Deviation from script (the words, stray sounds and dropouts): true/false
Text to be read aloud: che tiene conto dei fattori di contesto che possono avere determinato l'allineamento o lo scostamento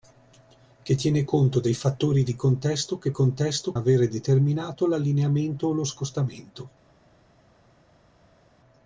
true